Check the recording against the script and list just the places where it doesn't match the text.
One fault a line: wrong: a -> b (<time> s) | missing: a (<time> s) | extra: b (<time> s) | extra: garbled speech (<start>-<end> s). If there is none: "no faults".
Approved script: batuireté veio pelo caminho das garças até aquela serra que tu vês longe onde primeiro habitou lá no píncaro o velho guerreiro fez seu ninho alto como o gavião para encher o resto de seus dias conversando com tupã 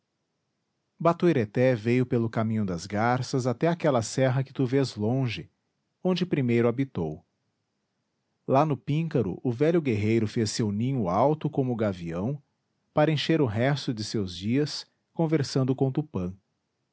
no faults